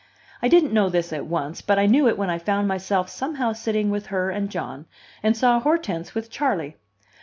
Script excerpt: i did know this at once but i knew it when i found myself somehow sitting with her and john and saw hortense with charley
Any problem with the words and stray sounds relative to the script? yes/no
yes